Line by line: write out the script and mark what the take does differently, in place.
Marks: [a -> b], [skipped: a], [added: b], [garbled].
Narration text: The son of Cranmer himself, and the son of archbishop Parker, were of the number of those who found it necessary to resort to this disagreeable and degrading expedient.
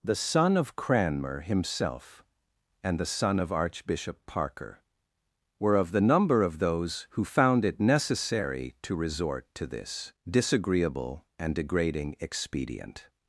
The son of Cranmer himself, and the son of archbishop Parker, were of the number of those who found it necessary to resort to this disagreeable and degrading expedient.